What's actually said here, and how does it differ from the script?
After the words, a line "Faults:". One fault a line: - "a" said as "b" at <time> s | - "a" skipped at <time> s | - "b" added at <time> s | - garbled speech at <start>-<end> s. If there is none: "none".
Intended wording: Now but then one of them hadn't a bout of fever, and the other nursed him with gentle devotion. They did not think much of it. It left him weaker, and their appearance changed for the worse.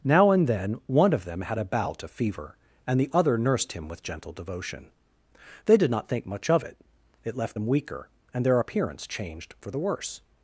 Now and then one of them had a bout of fever, and the other nursed him with gentle devotion. They did not think much of it. It left them weaker, and their appearance changed for the worse.
Faults:
- "but" said as "and" at 0.3 s
- "hadn't" said as "had" at 1.4 s
- "him" said as "them" at 7.5 s